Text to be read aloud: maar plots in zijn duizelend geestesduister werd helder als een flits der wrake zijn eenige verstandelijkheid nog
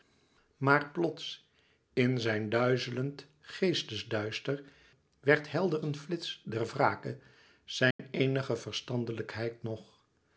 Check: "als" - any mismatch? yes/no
yes